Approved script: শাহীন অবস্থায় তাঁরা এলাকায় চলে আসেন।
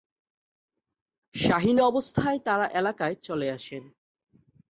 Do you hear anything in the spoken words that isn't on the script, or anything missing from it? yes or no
no